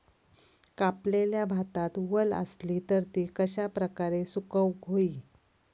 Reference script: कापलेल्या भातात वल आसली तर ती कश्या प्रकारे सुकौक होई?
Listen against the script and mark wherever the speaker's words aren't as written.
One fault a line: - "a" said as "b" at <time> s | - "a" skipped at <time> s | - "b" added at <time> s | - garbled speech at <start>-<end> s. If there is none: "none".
none